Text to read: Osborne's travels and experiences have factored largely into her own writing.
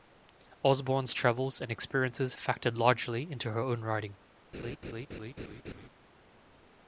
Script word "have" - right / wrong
wrong